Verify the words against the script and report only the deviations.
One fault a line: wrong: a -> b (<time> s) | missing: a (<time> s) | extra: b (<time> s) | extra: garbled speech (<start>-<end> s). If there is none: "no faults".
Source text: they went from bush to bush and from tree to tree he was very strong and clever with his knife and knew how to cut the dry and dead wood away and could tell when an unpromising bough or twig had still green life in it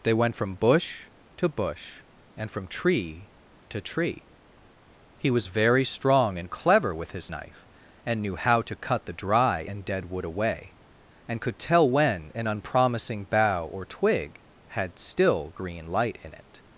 wrong: life -> light (15.9 s)